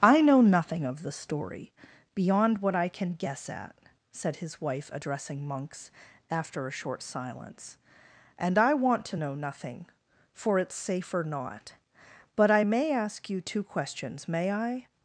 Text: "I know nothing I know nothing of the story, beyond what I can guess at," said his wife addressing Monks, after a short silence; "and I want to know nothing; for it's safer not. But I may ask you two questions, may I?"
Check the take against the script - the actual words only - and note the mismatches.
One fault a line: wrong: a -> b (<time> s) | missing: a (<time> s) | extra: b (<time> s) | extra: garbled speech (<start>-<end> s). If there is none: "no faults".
missing: I know nothing (0.8 s)